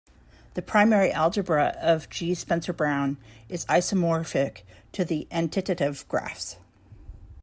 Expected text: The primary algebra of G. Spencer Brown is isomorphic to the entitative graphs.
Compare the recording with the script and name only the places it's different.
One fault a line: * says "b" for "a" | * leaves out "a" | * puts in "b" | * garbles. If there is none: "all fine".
all fine